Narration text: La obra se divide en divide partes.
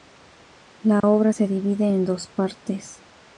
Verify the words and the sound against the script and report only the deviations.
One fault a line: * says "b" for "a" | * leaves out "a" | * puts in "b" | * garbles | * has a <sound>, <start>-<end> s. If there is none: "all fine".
* has a dropout, 1.0-1.0 s
* says "dos" for "divide"